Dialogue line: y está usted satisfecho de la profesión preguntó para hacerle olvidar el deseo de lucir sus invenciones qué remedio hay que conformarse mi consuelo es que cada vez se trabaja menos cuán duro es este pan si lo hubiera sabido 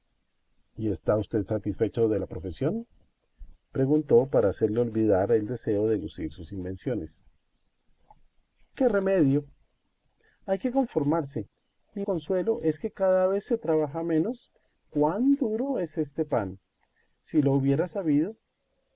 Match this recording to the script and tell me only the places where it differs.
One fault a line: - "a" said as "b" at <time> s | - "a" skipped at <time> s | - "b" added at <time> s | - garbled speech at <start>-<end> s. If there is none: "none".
none